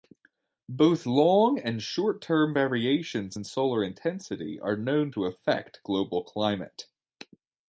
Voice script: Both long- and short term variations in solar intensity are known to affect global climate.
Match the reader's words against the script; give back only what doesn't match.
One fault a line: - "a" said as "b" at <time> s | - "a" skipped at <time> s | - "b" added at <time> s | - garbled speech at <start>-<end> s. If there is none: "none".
none